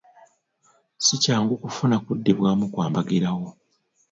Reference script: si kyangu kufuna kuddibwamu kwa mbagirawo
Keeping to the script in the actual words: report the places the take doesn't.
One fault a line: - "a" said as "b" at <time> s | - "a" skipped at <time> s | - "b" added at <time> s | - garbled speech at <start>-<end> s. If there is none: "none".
none